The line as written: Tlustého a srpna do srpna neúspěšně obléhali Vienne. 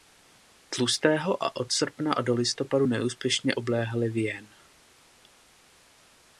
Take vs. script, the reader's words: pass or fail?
fail